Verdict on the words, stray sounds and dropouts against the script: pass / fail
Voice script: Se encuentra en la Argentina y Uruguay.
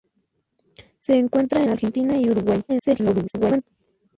fail